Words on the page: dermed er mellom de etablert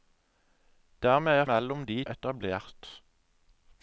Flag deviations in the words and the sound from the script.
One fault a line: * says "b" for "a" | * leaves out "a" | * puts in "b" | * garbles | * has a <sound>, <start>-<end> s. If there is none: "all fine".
all fine